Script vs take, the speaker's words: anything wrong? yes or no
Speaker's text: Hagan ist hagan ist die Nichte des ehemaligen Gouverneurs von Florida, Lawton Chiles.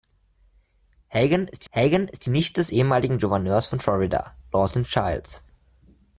no